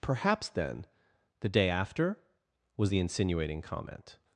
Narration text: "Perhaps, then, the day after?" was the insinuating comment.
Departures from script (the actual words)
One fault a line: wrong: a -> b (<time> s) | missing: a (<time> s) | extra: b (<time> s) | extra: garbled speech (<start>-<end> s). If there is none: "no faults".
no faults